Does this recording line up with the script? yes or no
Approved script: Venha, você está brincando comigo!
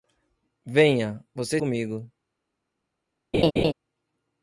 no